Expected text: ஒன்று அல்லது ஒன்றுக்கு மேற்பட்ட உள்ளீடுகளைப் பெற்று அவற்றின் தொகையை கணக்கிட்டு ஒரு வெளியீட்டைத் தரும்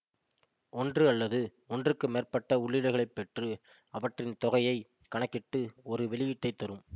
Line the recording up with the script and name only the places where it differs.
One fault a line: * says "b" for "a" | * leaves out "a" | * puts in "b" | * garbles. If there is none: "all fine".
all fine